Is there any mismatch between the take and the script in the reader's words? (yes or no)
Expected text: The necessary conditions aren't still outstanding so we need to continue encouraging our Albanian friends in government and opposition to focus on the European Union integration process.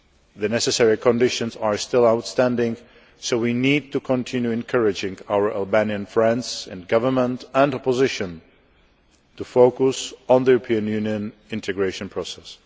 yes